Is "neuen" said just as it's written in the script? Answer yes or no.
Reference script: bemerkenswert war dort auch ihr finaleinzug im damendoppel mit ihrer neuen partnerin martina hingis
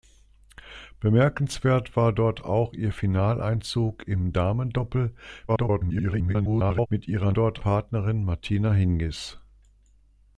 no